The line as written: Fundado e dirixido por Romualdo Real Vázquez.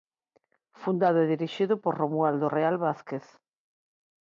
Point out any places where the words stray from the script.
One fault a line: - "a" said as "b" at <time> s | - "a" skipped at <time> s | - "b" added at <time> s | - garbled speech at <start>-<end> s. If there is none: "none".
none